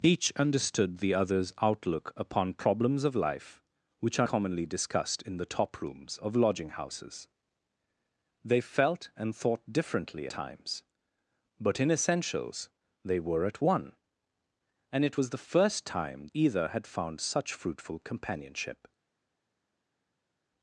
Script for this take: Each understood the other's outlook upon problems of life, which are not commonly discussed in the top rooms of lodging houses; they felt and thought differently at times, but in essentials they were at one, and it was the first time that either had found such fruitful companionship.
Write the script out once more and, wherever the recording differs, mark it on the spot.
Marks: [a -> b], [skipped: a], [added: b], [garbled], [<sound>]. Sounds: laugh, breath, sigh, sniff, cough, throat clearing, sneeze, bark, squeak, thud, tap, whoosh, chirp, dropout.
Each understood the other's outlook upon problems of life, which are [skipped: not] commonly discussed in the top rooms of lodging houses; they felt and thought differently [skipped: at] times, but in essentials they were at one, and it was the first time [skipped: that] either had found such fruitful companionship.